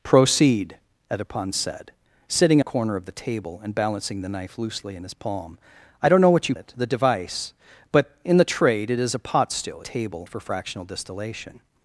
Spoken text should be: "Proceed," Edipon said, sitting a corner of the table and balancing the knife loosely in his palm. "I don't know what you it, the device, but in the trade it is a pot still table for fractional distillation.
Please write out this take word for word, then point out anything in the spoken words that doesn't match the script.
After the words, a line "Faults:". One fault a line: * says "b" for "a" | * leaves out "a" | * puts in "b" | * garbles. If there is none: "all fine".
"Proceed," Edipon said, sitting a corner of the table and balancing the knife loosely in his palm. "I don't know what you it, the device, but in the trade it is a pot still table for fractional distillation.
Faults:
all fine